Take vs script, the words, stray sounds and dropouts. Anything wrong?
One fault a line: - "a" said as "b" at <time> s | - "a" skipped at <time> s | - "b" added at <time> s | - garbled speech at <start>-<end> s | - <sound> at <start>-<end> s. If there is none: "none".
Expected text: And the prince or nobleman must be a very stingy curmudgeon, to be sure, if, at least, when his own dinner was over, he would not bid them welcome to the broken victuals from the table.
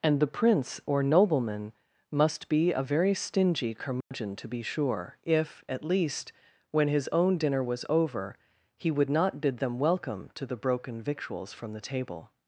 - dropout at 4.0-4.1 s